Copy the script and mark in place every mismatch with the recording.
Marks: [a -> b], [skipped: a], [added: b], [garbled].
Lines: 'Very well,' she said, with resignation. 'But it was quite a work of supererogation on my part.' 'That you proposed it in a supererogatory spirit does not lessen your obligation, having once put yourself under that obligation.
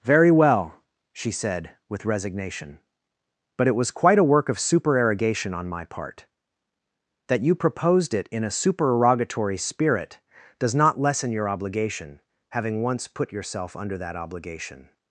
'Very well,' she said, with resignation. 'But it was quite a work of supererogation on my part.' 'That you proposed it in a supererogatory spirit does not lessen your obligation, having once put yourself under that obligation.